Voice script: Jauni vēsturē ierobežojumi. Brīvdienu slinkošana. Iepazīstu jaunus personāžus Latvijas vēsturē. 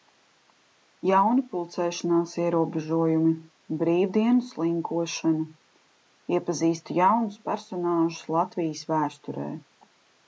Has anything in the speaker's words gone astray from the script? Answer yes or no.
yes